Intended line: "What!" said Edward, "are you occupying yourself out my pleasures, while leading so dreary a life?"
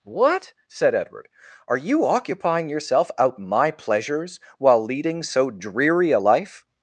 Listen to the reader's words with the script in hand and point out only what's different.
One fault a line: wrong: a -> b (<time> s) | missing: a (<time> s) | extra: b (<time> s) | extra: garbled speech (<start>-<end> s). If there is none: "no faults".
no faults